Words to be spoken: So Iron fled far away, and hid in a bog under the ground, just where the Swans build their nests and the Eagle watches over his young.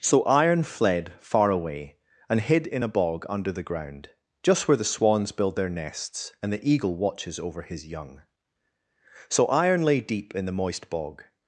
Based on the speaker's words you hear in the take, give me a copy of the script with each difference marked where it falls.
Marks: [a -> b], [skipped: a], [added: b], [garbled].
So Iron fled far away, and hid in a bog under the ground, just where the Swans build their nests and the Eagle watches over his young. [added: So Iron lay deep in the moist bog]